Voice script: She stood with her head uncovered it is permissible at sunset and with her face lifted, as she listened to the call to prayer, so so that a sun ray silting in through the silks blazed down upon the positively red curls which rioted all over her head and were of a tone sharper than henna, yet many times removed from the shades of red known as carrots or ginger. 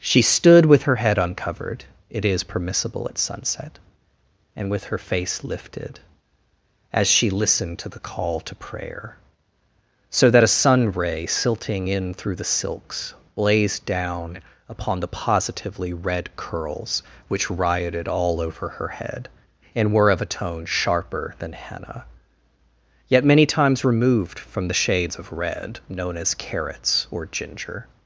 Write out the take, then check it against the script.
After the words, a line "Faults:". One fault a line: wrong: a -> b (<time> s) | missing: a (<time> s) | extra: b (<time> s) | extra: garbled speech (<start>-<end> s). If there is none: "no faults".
She stood with her head uncovered it is permissible at sunset and with her face lifted, as she listened to the call to prayer, so that a sun ray silting in through the silks blazed down upon the positively red curls which rioted all over her head and were of a tone sharper than henna, yet many times removed from the shades of red known as carrots or ginger.
Faults:
missing: so (10.3 s)